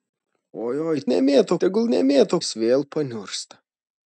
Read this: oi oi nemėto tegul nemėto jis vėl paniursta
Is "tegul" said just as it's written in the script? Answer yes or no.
yes